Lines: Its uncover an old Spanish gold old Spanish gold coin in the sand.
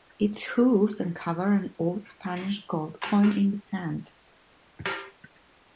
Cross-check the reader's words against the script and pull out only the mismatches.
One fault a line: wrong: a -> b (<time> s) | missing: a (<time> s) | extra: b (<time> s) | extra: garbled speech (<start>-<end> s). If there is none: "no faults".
extra: hooves (0.4 s)
missing: old Spanish gold (3.0 s)